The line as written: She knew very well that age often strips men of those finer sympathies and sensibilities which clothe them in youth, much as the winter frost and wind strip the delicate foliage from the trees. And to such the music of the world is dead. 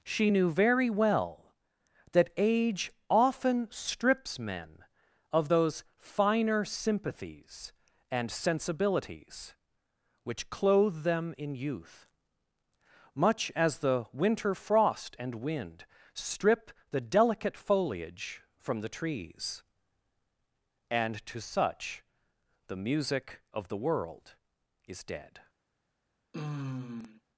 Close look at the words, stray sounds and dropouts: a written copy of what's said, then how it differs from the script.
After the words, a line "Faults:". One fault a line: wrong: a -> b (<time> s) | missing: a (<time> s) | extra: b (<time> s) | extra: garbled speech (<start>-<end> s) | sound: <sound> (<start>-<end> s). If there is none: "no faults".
She knew very well that age often strips men of those finer sympathies and sensibilities which clothe them in youth, much as the winter frost and wind strip the delicate foliage from the trees. And to such the music of the world is dead.
Faults:
sound: sigh (26.3-27.2 s)